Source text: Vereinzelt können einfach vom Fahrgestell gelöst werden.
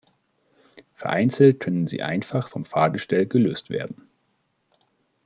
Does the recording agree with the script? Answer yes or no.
no